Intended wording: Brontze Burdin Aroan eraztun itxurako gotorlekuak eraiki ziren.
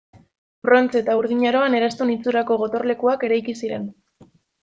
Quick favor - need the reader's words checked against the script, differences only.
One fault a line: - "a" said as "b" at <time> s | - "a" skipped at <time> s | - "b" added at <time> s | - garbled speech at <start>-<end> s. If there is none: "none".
- "eta" added at 1.0 s